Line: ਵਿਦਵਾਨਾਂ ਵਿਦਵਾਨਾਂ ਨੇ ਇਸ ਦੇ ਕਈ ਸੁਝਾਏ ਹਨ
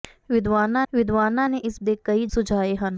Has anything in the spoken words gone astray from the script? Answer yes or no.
no